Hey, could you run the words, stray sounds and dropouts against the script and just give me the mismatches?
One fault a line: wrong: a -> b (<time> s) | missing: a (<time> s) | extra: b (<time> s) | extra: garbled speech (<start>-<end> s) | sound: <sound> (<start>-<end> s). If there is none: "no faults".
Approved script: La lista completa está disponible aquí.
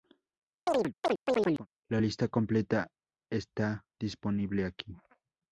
sound: chirp (0.7-1.7 s)